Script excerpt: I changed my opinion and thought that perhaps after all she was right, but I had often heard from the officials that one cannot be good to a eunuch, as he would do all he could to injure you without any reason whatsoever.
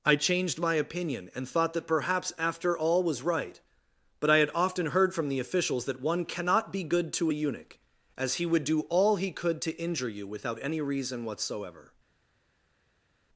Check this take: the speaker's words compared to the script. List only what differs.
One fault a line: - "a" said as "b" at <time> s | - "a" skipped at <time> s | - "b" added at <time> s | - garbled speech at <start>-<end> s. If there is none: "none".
- "she" skipped at 3.0 s